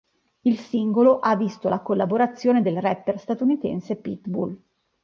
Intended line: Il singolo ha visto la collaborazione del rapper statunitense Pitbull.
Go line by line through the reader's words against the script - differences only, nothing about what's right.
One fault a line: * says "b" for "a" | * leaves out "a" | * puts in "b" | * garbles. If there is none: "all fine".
all fine